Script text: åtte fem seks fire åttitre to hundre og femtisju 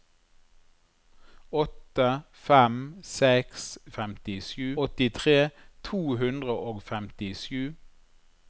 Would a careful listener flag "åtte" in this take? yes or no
no